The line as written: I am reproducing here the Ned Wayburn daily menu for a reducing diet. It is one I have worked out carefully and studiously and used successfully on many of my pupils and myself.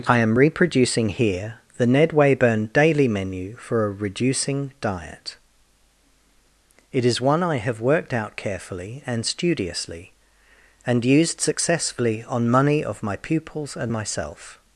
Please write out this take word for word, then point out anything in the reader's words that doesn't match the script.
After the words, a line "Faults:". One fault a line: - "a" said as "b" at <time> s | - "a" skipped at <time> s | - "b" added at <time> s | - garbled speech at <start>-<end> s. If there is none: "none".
I am reproducing here the Ned Wayburn daily menu for a reducing diet. It is one I have worked out carefully and studiously and used successfully on money of my pupils and myself.
Faults:
- "many" said as "money" at 12.5 s